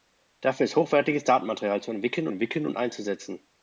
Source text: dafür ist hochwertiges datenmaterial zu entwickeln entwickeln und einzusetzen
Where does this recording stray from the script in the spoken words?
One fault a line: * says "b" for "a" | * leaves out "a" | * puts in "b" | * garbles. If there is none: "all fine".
all fine